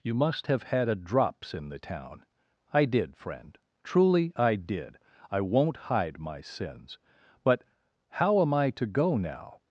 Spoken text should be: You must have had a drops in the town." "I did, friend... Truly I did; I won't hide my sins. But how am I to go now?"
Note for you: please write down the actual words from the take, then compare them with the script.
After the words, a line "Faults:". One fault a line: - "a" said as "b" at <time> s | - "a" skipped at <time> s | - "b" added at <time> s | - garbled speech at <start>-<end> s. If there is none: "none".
You must have had a drops in the town." "I did, friend... Truly I did; I won't hide my sins. But how am I to go now?"
Faults:
none